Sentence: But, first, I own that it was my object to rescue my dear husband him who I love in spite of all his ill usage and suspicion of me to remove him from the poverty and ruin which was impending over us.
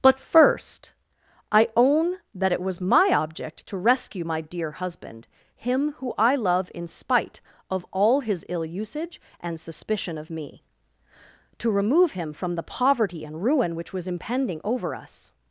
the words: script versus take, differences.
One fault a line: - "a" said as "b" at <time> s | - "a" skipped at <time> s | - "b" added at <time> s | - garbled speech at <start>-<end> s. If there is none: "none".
none